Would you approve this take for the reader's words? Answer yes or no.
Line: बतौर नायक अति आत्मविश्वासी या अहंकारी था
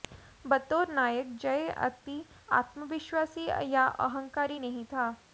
no